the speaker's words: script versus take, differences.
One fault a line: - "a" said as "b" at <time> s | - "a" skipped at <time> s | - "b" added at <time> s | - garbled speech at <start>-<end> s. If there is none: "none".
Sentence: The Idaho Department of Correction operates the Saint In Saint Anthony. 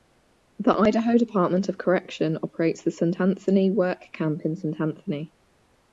- "Anthony Work Camp" added at 3.2 s